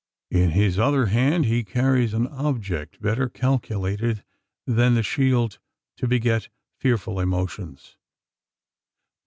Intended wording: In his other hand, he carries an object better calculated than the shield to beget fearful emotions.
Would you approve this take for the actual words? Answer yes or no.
yes